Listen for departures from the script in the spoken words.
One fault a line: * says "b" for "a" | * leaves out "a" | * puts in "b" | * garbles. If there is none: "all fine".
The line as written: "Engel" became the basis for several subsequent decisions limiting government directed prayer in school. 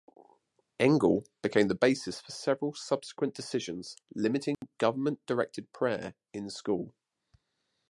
all fine